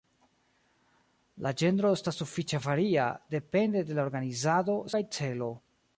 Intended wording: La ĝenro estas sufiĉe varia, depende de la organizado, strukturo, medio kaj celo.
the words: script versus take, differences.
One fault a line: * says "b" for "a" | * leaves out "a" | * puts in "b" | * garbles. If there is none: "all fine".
* leaves out "strukturo medio"